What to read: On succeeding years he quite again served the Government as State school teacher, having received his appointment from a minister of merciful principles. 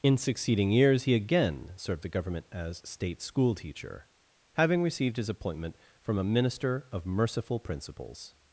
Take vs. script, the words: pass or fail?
fail